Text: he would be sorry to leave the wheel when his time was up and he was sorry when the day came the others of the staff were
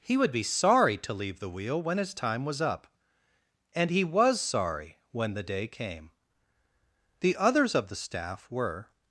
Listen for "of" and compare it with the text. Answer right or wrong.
right